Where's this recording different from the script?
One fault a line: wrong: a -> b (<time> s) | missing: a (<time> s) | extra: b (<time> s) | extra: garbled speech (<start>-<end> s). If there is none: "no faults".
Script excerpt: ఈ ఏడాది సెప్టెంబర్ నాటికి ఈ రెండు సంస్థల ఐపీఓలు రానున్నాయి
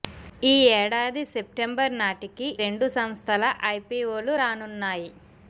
missing: ఈ (2.5 s)